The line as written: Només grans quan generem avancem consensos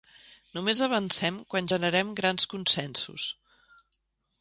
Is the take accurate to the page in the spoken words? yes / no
no